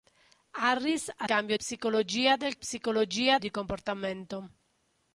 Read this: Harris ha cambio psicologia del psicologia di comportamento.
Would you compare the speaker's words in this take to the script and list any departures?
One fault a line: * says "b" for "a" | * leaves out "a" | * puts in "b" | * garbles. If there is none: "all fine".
all fine